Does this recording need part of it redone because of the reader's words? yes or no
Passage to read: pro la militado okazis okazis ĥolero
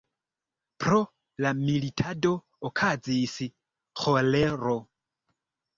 yes